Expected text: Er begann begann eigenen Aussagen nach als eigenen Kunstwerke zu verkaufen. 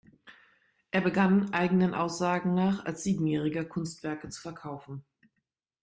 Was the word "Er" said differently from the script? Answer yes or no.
no